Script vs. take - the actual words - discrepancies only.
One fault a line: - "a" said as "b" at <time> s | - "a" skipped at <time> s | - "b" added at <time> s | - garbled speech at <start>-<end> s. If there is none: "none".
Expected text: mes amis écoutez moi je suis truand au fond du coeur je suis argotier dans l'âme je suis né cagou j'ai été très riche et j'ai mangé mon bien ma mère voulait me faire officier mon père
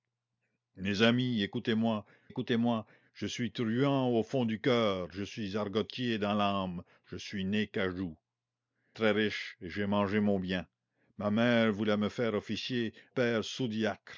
- "écoutez moi" added at 2.3 s
- "j'ai été" skipped at 8.2 s
- "mon" skipped at 12.9 s